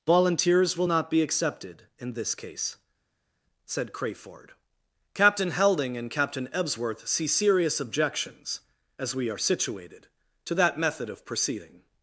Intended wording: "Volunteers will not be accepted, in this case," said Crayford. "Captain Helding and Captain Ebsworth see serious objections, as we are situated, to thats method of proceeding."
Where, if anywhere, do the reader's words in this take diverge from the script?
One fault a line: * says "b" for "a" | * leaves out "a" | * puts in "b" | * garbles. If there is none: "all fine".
* says "that" for "thats"